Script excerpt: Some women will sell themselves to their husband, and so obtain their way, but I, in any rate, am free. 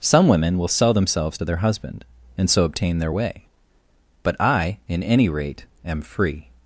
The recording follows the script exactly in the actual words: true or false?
true